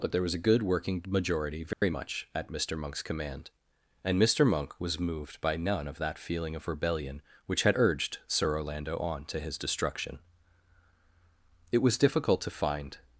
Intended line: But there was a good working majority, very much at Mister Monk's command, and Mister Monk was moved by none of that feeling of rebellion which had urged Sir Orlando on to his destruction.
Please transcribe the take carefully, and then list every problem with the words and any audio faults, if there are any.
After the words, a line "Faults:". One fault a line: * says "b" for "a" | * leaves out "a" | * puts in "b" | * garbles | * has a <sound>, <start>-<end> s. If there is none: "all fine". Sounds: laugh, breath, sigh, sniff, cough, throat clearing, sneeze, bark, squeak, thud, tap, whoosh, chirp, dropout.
But there was a good working majority, very much at Mister Monk's command, and Mister Monk was moved by none of that feeling of rebellion which had urged Sir Orlando on to his destruction. It was difficult to find
Faults:
* has a dropout, 1.7-1.8 s
* puts in "It was difficult to find"